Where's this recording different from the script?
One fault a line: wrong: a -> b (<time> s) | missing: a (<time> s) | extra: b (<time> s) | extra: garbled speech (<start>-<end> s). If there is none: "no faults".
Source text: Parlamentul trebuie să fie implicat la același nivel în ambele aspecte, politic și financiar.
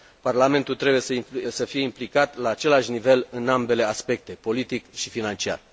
no faults